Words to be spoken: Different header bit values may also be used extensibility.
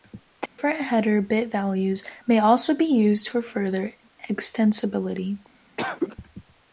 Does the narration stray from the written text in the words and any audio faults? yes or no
yes